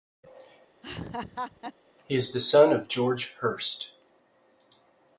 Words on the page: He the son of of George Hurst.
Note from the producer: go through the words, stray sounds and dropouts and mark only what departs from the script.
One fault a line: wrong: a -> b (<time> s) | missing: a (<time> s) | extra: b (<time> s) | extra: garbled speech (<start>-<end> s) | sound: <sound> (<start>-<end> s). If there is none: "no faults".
sound: laugh (0.8-1.7 s)
extra: is (2.1 s)
missing: of (2.9 s)